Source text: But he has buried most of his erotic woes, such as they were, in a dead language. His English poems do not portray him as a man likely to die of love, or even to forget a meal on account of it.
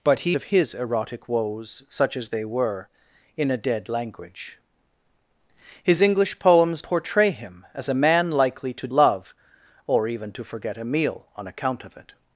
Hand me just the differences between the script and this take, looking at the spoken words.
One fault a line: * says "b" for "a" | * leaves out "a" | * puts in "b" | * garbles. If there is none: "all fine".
* leaves out "has buried most"
* leaves out "do not"
* leaves out "die of"